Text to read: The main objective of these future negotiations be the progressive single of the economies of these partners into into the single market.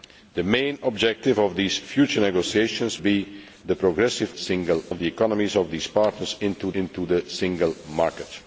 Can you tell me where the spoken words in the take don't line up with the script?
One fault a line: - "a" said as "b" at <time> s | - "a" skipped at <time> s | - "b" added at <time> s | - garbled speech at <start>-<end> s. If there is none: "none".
none